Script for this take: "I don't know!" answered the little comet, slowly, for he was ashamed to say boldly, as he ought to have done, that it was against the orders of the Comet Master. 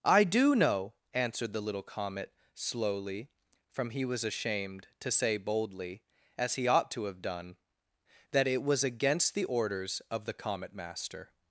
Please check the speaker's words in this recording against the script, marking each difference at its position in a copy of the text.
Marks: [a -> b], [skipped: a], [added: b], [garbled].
"I [don't -> do] know!" answered the little comet, slowly, [for -> from] he was ashamed to say boldly, as he ought to have done, that it was against the orders of the Comet Master.